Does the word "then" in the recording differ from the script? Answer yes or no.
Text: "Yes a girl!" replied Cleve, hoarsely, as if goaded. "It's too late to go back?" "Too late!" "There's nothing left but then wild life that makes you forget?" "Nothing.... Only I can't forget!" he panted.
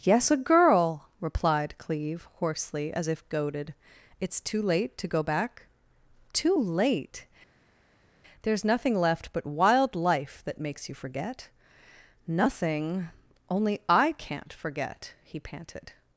yes